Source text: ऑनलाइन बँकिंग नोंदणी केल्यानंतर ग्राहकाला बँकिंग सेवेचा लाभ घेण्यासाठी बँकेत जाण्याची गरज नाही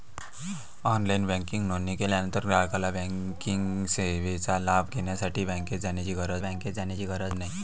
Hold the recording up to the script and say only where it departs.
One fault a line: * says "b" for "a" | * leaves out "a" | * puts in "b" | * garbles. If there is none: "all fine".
* puts in "बँकेत जाण्याची गरज"